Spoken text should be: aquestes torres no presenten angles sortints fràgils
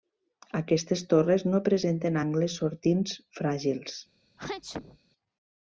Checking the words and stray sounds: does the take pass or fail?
fail